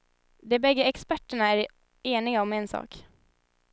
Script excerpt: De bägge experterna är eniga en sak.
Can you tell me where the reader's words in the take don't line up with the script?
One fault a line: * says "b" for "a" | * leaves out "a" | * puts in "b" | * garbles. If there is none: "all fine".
* puts in "om"